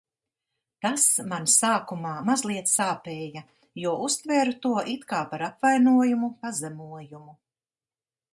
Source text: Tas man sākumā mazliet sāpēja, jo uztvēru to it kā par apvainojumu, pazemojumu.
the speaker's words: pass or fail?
pass